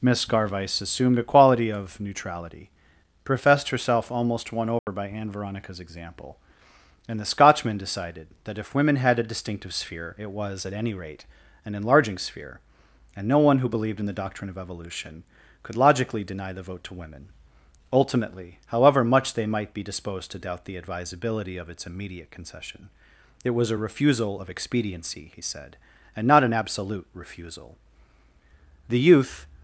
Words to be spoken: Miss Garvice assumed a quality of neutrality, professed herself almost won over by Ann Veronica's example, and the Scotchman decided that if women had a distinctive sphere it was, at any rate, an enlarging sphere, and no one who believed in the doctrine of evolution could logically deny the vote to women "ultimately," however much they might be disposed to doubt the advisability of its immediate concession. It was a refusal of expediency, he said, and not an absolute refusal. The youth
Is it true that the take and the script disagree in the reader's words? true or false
false